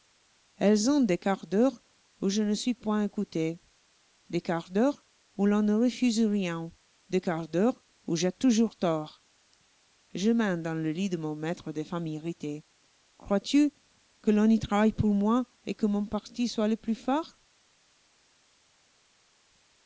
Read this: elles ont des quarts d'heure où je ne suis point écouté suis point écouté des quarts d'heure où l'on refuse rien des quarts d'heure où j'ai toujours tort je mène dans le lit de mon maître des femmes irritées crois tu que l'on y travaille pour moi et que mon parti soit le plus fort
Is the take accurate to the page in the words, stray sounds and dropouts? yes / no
no